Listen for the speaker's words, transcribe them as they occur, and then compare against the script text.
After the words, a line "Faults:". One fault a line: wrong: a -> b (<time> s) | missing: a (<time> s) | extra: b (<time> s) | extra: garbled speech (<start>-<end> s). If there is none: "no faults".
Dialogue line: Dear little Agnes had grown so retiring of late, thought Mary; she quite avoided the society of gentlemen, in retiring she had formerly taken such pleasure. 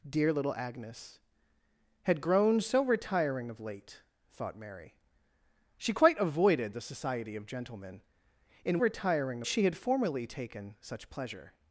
Dear little Agnes had grown so retiring of late, thought Mary; she quite avoided the society of gentlemen, in retiring she had formerly taken such pleasure.
Faults:
no faults